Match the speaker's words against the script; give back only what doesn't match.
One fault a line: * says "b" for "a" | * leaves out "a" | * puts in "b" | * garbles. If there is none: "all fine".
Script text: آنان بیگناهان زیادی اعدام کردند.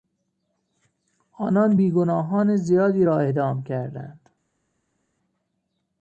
* puts in "را"